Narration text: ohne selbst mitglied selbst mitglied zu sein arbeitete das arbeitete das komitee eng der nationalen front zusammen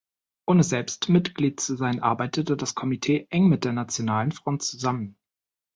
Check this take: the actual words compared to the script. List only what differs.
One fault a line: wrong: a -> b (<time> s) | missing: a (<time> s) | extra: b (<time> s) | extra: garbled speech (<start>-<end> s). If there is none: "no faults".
missing: selbst mitglied (1.6 s)
missing: arbeitete das (2.7 s)
extra: mit (3.5 s)